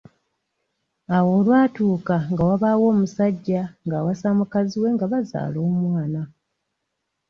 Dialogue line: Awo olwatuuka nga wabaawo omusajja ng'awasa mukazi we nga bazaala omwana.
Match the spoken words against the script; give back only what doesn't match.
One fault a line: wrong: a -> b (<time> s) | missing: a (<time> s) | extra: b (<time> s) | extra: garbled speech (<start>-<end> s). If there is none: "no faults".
no faults